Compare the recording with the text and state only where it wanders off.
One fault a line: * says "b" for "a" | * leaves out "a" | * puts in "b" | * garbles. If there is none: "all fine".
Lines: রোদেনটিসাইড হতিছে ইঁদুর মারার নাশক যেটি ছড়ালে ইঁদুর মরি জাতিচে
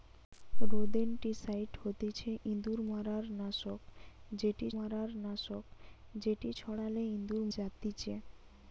* puts in "মারার নাশক যেটি"
* leaves out "মরি"